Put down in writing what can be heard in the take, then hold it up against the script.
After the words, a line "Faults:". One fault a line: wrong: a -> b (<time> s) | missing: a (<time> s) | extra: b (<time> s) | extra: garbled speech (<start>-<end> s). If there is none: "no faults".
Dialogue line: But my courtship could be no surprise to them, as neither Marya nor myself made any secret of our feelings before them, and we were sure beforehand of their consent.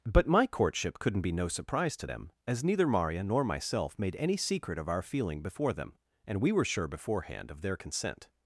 But my courtship couldn't be no surprise to them, as neither Marya nor myself made any secret of our feeling before them, and we were sure beforehand of their consent.
Faults:
wrong: could -> couldn't (1.0 s)
wrong: feelings -> feeling (5.0 s)